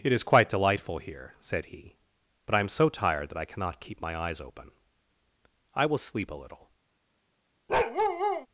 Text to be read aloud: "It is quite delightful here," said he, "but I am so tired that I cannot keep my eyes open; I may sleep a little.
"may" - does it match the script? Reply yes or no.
no